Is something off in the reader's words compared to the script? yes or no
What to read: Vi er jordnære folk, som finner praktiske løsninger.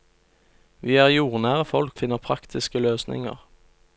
yes